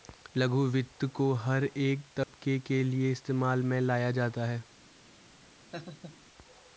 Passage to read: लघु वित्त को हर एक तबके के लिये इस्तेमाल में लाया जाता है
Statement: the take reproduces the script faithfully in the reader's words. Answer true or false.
true